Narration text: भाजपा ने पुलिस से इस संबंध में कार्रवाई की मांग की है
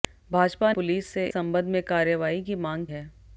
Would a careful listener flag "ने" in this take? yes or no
yes